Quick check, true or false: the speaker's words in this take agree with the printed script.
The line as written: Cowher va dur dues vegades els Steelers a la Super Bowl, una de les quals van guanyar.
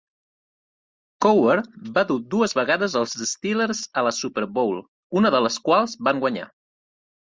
true